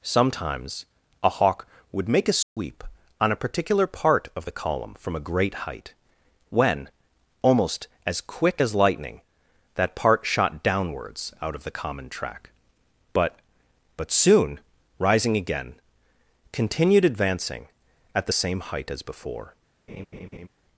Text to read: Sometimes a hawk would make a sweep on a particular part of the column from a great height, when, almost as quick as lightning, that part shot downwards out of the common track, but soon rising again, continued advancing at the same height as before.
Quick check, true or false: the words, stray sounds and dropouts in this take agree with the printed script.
false